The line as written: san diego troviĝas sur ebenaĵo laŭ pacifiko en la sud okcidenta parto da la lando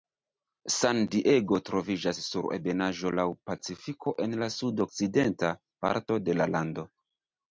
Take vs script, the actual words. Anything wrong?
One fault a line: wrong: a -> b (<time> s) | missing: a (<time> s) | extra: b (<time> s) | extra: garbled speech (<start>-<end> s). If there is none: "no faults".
wrong: da -> de (6.3 s)